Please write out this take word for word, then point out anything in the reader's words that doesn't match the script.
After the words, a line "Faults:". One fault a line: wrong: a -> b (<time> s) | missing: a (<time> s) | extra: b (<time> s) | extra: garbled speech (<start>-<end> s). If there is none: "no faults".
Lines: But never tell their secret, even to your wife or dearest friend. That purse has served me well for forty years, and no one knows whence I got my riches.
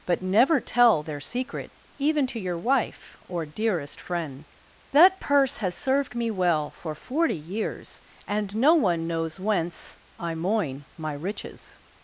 But never tell their secret, even to your wife or dearest friend. That purse has served me well for forty years, and no one knows whence I moin my riches.
Faults:
wrong: got -> moin (10.4 s)